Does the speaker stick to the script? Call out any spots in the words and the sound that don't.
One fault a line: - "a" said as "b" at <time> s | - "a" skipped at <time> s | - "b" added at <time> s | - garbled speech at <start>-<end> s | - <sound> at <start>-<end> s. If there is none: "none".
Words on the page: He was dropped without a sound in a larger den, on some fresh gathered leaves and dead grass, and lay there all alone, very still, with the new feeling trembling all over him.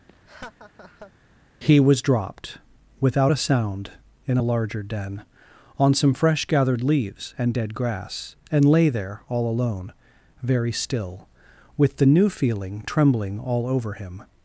- laugh at 0.1-1.1 s